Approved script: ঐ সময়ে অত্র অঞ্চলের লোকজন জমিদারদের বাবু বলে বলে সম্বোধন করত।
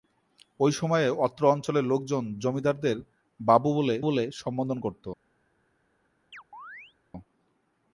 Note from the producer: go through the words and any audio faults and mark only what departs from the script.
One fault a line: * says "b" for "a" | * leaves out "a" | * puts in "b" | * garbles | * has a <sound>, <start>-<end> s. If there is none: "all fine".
* has a chirp, 6.3-6.9 s